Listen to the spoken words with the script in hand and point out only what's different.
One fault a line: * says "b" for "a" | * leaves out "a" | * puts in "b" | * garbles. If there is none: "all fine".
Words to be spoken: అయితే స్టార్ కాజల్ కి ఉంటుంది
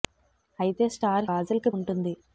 all fine